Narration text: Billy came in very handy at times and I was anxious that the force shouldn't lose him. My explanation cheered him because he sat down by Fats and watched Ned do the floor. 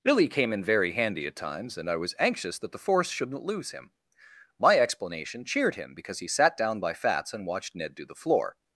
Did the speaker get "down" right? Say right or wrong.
right